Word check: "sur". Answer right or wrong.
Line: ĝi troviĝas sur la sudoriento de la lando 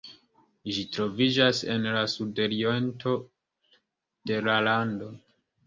wrong